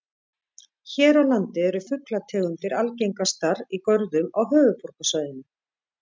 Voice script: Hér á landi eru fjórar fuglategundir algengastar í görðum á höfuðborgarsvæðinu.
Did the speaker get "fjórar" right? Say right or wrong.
wrong